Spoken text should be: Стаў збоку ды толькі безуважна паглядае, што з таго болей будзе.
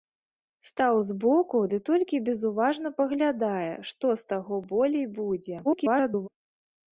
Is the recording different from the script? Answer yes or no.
yes